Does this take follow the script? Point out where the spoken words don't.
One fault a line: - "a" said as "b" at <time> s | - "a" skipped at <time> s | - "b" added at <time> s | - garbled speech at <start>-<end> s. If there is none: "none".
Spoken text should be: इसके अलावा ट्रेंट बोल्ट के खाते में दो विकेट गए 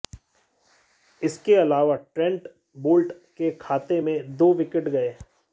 none